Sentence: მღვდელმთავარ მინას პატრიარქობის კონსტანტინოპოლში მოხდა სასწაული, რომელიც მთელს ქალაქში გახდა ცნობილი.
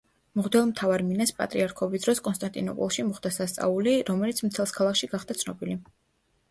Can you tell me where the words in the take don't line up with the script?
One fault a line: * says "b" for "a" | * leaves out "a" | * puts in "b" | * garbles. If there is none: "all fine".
* puts in "დროს"